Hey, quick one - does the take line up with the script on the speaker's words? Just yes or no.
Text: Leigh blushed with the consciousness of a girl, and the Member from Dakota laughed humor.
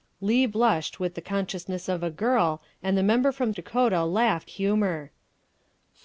yes